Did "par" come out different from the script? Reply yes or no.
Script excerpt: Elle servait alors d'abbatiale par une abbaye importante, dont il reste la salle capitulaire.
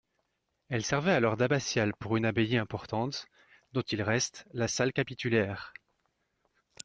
yes